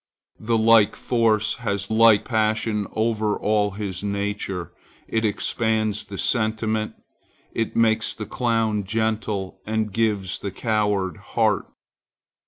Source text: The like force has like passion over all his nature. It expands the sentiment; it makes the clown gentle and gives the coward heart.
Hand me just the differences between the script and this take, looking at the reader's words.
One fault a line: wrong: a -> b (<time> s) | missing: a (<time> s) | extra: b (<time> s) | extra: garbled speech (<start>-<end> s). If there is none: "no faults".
no faults